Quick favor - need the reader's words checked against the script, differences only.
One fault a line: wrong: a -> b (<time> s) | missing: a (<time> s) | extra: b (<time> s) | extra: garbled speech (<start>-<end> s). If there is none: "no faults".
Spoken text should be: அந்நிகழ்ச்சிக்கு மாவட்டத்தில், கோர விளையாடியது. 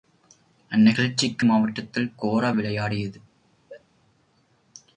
no faults